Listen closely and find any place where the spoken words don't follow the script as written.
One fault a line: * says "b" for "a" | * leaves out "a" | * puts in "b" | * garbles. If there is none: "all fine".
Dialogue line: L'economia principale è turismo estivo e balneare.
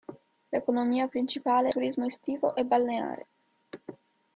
all fine